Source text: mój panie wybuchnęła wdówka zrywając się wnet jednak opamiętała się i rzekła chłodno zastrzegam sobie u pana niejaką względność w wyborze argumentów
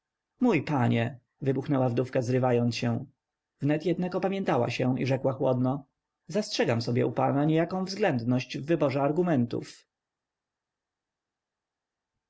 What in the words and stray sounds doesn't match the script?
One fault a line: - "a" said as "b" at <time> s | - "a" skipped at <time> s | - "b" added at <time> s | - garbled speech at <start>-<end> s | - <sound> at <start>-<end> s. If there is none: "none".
none